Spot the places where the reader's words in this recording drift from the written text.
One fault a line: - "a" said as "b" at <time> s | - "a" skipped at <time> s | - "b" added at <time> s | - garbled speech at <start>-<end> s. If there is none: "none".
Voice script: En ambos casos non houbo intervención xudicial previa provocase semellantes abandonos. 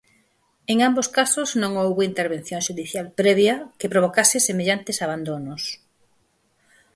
- "que" added at 3.8 s